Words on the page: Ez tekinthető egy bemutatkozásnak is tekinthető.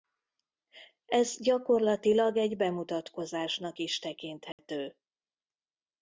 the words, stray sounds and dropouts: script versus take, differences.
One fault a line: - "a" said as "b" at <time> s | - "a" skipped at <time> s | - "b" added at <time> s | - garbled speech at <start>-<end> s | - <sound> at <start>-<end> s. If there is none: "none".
- "tekinthető" said as "gyakorlatilag" at 1.4 s
- dropout at 4.5-4.6 s